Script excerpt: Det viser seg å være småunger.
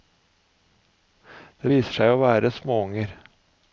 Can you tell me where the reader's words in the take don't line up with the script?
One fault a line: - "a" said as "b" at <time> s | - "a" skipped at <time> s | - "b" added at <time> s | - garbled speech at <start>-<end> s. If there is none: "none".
none